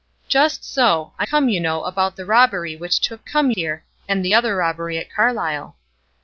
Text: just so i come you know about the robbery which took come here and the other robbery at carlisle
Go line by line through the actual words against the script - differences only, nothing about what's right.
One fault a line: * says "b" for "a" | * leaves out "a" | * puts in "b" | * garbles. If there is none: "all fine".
all fine